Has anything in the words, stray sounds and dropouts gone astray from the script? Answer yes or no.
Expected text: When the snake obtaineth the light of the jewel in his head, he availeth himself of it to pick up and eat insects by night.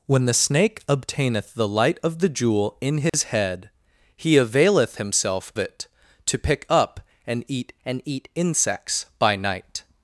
yes